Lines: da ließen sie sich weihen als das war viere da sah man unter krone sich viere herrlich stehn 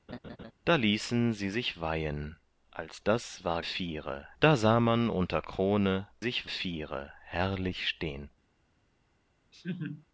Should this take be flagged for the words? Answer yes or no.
no